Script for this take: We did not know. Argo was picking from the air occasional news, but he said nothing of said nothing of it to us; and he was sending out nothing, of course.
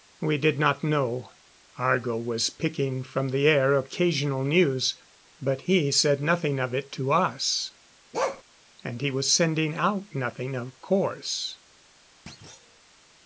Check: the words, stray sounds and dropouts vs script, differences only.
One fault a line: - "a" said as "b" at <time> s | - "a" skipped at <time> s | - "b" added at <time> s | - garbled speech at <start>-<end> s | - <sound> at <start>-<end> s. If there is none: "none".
- "said nothing of" skipped at 6.7 s
- bark at 8.1-8.4 s
- thud at 12.3-12.8 s